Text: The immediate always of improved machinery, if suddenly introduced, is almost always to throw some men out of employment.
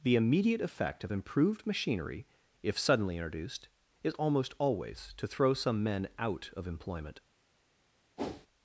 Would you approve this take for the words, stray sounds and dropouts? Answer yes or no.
no